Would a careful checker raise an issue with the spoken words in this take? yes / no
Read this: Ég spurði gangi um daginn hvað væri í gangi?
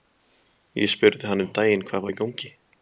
yes